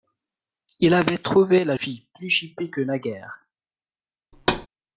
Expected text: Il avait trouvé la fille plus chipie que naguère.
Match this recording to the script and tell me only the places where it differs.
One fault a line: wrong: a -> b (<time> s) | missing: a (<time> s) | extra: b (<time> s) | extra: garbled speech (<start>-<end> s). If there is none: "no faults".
no faults